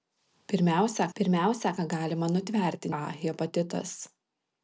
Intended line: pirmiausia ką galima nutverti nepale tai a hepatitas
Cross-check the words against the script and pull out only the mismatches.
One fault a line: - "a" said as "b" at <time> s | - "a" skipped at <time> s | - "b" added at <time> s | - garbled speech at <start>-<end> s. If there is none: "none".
- "pirmiausia" added at 1.2 s
- "nepale tai" skipped at 2.9 s